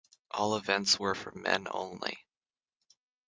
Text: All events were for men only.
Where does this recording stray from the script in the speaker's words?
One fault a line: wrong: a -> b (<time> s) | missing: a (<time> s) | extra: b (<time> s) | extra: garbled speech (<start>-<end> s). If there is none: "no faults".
no faults